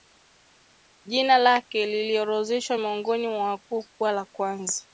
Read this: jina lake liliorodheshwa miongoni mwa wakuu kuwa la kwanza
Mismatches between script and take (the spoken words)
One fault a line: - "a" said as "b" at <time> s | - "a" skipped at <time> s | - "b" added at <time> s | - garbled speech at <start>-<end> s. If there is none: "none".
none